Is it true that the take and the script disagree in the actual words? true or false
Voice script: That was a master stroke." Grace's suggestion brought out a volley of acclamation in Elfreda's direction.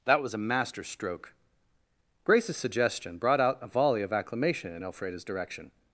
false